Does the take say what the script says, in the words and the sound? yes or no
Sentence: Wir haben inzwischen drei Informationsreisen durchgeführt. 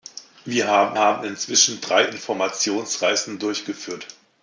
no